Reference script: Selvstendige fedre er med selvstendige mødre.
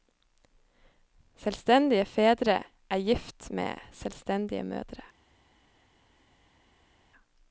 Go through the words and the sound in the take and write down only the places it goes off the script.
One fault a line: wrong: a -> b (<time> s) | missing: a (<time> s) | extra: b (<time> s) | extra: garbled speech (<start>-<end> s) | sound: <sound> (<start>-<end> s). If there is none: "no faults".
extra: gift (3.0 s)